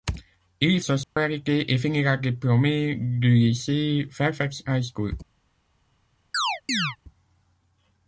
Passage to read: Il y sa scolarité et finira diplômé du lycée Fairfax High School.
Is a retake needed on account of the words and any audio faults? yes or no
yes